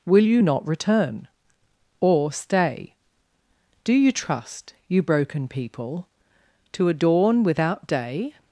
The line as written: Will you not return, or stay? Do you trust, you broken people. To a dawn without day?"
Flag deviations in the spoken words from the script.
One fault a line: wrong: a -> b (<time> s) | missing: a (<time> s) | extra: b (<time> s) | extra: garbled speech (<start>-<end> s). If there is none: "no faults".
no faults